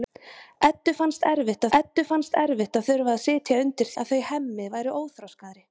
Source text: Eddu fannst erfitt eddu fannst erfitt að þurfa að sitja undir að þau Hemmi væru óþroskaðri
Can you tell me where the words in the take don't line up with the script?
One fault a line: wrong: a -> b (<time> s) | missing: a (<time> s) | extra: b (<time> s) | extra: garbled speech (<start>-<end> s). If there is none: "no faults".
no faults